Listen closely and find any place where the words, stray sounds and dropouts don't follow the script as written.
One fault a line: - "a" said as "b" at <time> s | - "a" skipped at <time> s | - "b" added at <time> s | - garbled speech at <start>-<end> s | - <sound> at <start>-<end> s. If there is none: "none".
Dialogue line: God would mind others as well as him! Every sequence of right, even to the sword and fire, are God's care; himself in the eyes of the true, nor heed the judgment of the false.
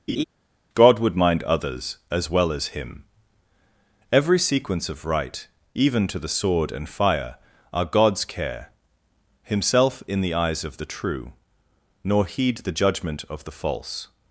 - laugh at 0.1-0.2 s